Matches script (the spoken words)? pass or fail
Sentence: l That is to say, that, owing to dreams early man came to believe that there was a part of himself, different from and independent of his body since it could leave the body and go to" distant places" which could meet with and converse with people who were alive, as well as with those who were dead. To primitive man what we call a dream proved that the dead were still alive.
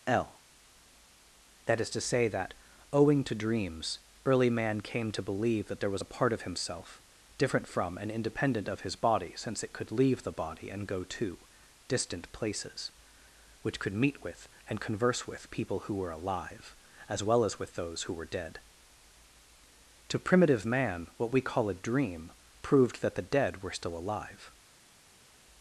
pass